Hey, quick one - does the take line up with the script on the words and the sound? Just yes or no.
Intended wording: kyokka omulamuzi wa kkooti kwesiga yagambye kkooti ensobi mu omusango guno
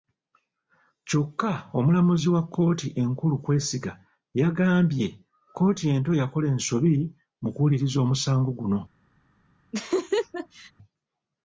no